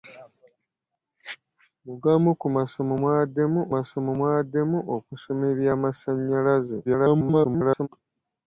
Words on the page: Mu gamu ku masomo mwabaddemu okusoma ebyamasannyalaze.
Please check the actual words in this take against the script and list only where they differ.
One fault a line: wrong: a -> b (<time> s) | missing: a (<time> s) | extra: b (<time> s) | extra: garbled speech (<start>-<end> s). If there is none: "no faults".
extra: masomo mwabaddemu (3.7 s)
extra: garbled speech (6.9-7.9 s)